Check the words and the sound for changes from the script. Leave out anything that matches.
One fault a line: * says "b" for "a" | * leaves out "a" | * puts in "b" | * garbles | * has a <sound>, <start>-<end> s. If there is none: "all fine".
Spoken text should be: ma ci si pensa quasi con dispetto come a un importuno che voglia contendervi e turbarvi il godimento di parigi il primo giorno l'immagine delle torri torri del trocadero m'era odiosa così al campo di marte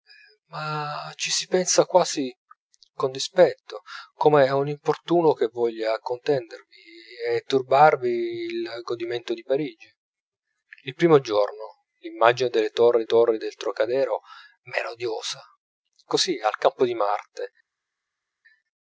all fine